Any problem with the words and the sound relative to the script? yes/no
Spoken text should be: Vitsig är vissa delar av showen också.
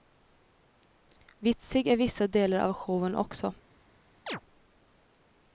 yes